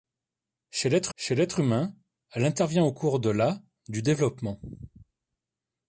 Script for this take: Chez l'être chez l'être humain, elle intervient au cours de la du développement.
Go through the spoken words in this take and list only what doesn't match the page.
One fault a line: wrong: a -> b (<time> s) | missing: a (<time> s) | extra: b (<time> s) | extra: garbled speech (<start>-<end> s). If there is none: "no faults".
no faults